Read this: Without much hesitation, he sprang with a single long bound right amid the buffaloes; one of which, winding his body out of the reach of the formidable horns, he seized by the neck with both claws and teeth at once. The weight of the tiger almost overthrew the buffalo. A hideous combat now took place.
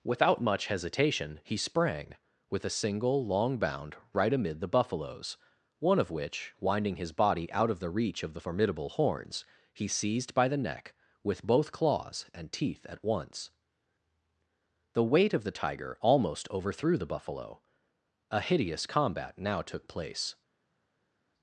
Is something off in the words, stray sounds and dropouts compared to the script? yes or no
no